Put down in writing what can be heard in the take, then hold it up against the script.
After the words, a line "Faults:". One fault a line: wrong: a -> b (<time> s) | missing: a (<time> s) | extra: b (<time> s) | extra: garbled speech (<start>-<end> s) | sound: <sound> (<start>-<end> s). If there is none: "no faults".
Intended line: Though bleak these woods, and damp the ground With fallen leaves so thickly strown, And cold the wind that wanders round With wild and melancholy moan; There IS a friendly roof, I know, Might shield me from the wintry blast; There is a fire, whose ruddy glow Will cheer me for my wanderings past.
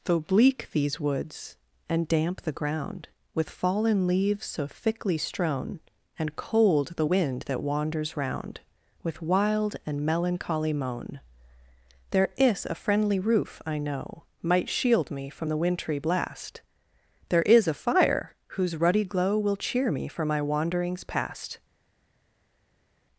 Though bleak these woods, and damp the ground With fallen leaves so thickly strown, And cold the wind that wanders round With wild and melancholy moan; There IS a friendly roof, I know, Might shield me from the wintry blast; There is a fire, whose ruddy glow Will cheer me for my wanderings past.
Faults:
no faults